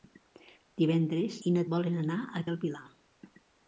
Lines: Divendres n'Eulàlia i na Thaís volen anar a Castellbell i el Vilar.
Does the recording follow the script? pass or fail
fail